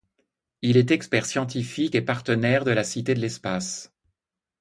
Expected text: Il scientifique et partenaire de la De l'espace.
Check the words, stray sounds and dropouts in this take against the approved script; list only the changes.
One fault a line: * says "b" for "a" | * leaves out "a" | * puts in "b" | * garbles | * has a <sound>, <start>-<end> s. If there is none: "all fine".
* puts in "est expert"
* puts in "Cité"